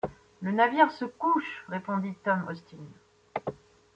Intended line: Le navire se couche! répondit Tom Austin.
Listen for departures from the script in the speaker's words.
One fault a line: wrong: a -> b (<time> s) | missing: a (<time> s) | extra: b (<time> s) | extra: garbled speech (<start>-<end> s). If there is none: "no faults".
no faults